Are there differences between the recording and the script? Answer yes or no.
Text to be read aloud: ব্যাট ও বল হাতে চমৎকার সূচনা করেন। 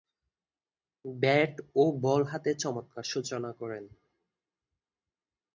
no